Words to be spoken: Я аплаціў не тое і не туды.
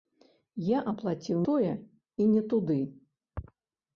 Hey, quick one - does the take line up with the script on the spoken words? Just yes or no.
no